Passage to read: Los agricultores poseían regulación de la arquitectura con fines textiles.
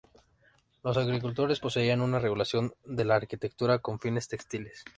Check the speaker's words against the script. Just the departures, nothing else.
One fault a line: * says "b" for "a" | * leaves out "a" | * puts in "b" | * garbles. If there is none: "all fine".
* puts in "una"